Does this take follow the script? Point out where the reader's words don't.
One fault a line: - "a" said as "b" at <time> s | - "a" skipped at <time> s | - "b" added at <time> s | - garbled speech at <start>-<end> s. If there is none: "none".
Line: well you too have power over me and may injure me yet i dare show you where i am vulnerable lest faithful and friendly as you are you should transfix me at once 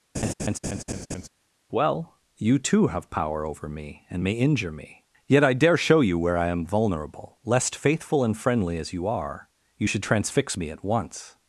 none